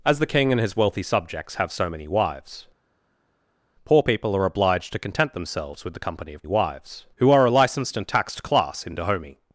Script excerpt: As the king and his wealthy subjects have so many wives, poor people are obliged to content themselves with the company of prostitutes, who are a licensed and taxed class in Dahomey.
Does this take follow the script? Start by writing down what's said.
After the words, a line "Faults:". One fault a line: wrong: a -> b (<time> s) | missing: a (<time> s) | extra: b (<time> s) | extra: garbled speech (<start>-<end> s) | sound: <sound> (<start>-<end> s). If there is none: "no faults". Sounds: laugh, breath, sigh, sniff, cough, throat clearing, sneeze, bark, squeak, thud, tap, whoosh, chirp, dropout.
As the king and his wealthy subjects have so many wives, poor people are obliged to content themselves with the company of wives, who are a licensed and taxed class in Dahomey.
Faults:
wrong: prostitutes -> wives (6.5 s)